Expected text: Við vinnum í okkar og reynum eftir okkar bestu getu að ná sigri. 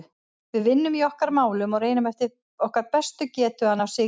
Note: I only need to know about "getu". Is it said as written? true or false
true